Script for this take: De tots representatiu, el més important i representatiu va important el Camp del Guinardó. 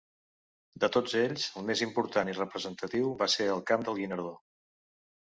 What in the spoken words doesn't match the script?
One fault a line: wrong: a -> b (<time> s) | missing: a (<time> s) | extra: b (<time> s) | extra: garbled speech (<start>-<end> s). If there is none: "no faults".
wrong: representatiu -> ells (1.2 s)
wrong: important -> ser (3.4 s)